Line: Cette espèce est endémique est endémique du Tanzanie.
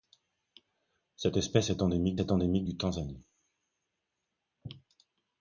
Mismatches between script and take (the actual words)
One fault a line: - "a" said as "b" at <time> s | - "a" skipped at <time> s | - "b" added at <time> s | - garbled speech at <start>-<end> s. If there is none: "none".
none